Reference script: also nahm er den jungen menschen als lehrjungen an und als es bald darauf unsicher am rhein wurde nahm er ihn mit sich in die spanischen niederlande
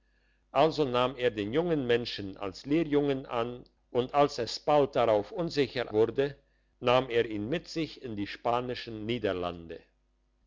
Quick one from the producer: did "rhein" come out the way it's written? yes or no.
no